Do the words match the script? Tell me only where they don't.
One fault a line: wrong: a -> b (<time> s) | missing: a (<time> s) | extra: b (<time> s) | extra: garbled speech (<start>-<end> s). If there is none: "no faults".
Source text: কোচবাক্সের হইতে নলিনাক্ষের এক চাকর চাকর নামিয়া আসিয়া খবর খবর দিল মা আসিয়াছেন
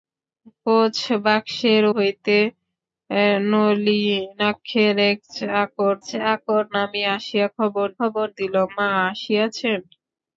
no faults